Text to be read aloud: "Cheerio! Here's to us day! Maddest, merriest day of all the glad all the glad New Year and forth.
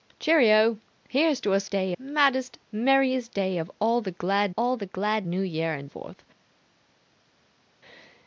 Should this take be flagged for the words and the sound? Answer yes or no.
no